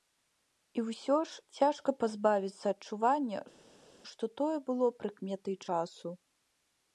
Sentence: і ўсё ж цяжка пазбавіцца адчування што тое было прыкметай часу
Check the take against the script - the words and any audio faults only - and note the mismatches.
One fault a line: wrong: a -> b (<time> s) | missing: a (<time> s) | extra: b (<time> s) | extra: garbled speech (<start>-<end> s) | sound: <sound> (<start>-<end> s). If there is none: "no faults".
no faults